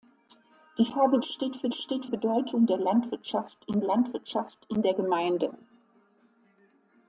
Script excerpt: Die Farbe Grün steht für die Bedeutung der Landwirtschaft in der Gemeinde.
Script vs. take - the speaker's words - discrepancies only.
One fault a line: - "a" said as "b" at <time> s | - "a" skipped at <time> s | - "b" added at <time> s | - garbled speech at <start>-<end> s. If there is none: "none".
- "Grün" skipped at 1.2 s
- "die" said as "steht" at 1.7 s
- "Landwirtschaft in" added at 3.8 s